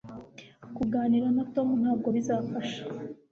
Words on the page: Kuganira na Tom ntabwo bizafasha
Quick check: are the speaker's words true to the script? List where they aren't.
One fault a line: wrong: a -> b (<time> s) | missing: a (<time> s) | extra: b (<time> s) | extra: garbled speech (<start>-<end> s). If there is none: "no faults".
no faults